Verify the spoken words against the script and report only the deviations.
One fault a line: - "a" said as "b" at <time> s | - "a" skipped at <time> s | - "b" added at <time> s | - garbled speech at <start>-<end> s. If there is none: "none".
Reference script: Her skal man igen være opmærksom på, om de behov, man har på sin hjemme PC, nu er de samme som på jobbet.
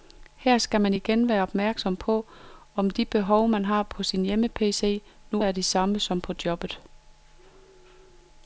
none